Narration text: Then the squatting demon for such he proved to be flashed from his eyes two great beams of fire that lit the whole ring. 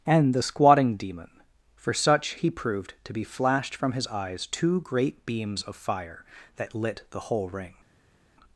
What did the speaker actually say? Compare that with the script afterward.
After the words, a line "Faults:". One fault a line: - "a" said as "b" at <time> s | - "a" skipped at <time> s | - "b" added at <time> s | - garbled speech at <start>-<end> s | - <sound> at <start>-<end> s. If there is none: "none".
And the squatting demon for such he proved to be flashed from his eyes two great beams of fire that lit the whole ring.
Faults:
- "Then" said as "And" at 0.1 s